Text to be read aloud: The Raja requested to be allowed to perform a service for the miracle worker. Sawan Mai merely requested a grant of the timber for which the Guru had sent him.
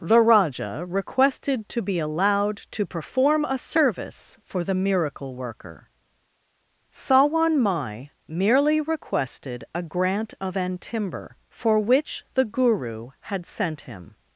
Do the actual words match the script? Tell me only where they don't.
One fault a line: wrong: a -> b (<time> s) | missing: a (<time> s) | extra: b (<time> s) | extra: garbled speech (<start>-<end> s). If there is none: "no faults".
wrong: the -> an (10.6 s)